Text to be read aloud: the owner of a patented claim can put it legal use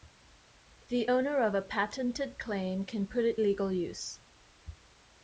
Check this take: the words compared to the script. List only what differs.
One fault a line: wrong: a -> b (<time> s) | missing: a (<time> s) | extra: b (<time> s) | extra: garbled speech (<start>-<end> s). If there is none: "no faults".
no faults